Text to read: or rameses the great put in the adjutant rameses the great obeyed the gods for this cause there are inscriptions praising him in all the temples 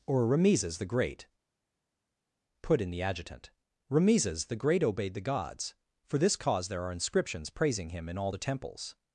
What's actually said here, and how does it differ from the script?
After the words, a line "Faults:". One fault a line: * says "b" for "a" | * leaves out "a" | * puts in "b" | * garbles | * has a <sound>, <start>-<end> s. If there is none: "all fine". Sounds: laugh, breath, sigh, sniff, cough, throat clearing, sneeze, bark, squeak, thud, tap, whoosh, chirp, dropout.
or rameses the great put in the adjutant rameses the great obeyed the gods for this cause there are inscriptions praising him in all the temples
Faults:
all fine